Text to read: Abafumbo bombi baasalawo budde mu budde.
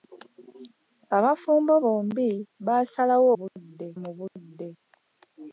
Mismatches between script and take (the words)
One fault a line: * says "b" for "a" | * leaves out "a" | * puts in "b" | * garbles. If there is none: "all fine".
all fine